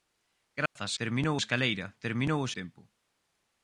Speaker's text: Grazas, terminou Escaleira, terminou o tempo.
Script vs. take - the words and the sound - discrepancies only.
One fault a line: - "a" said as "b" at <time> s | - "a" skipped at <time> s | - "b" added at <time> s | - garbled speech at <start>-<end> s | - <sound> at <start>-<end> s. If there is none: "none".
- dropout at 0.7-0.8 s